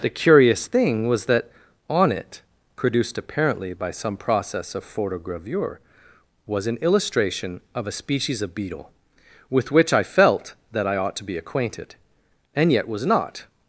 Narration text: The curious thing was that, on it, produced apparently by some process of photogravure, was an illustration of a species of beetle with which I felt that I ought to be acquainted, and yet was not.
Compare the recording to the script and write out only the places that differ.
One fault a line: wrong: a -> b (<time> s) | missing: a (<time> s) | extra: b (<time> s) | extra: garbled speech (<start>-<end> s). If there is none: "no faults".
no faults